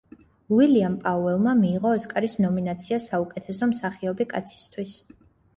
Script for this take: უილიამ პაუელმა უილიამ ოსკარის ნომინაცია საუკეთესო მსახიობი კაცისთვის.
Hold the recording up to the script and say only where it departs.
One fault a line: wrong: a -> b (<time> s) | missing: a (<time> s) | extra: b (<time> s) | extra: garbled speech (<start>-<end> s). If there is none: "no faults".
wrong: უილიამ -> მიიღო (1.6 s)